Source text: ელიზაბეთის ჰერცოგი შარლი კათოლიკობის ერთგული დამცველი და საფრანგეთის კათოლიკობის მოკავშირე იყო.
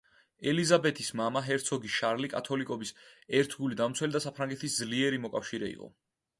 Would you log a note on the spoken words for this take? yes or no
yes